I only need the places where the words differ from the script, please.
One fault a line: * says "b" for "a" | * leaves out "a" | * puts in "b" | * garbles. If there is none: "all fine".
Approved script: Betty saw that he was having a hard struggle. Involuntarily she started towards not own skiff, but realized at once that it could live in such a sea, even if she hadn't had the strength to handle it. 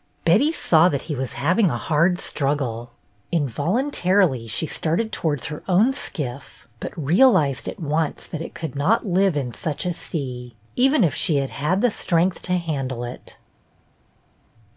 * says "her" for "not"
* puts in "not"
* says "had" for "hadn't"